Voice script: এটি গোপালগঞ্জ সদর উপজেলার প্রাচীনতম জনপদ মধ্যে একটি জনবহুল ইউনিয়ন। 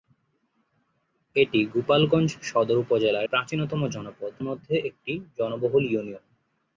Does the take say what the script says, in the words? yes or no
yes